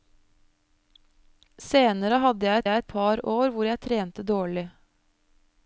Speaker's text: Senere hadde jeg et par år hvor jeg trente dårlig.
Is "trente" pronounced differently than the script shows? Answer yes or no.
no